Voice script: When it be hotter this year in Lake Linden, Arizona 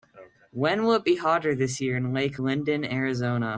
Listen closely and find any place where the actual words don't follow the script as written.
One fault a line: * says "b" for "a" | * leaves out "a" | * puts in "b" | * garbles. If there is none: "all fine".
* puts in "will"